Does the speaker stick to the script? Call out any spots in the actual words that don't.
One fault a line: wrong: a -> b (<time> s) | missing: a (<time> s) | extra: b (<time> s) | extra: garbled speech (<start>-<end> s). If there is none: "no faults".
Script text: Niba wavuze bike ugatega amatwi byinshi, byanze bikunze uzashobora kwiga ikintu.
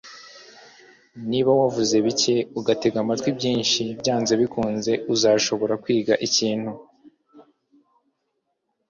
no faults